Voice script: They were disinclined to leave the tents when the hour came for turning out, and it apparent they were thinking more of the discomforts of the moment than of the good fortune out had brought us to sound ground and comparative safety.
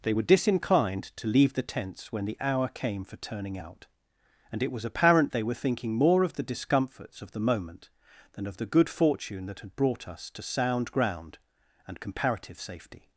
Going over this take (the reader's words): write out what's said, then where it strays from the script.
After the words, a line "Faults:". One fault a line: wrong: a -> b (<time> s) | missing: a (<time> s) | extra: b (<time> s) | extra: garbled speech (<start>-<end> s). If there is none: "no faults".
They were disinclined to leave the tents when the hour came for turning out, and it was apparent they were thinking more of the discomforts of the moment than of the good fortune that had brought us to sound ground and comparative safety.
Faults:
extra: was (4.7 s)
wrong: out -> that (9.5 s)